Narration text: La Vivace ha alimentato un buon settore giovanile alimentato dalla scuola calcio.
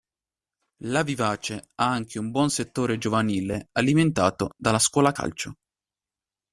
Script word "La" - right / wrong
right